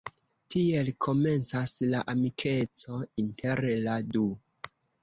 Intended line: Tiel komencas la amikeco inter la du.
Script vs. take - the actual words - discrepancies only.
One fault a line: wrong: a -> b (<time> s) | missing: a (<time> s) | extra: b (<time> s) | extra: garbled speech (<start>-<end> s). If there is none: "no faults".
no faults